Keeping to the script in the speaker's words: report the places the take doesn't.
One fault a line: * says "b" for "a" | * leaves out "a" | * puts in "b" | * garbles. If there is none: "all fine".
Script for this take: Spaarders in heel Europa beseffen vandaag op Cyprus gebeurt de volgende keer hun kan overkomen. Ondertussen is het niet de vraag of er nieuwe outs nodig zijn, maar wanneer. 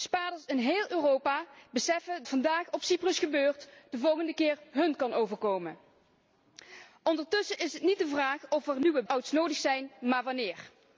all fine